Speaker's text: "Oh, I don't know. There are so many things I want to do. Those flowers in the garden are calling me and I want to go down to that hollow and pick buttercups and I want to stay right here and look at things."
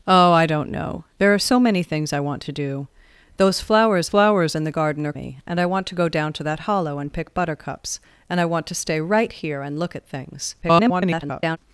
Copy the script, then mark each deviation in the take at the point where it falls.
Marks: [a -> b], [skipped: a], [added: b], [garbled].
"Oh, I don't know. There are so many things I want to do. Those flowers [added: flowers] in the garden are [skipped: calling] me and I want to go down to that hollow and pick buttercups and I want to stay right here and look at things." [garbled]